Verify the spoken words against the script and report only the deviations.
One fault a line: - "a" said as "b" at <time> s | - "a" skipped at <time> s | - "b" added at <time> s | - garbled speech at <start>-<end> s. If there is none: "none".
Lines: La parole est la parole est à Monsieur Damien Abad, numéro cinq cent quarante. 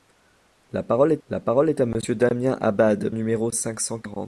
none